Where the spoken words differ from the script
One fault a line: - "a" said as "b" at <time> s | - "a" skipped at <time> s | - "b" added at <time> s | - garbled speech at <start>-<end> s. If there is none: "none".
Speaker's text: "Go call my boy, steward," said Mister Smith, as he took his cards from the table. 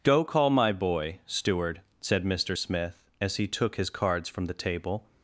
none